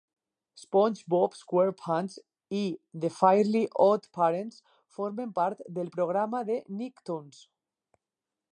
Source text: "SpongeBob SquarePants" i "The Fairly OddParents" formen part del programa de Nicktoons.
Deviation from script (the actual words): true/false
false